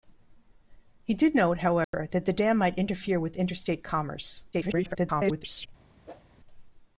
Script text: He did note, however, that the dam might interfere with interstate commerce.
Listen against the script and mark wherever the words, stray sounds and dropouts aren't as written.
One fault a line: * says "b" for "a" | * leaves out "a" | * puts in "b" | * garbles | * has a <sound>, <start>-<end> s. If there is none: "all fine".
* has a dropout, 1.8-1.9 s
* garbles
* has a whoosh, 6.1-6.2 s